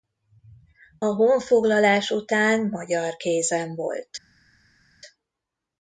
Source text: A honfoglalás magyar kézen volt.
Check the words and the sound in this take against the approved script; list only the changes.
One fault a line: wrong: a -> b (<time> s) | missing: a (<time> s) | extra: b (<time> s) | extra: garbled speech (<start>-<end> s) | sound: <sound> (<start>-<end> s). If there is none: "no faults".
extra: után (2.1 s)